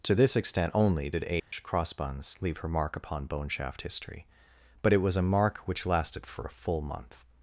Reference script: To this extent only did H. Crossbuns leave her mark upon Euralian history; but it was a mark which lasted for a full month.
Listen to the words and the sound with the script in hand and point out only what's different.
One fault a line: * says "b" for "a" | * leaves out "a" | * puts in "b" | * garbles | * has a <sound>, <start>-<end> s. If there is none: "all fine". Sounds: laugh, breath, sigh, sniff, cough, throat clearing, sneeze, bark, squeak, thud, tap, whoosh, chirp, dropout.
* has a dropout, 1.4-1.5 s
* says "Boneshaft" for "Euralian"